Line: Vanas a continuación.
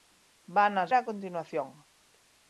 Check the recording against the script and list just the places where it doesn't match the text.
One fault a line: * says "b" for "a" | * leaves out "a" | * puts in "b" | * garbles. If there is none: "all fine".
all fine